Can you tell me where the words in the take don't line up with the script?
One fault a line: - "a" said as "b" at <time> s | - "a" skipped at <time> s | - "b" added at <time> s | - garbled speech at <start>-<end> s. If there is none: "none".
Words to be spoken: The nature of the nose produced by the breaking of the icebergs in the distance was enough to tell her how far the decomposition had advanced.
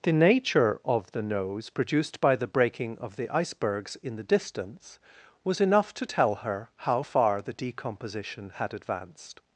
none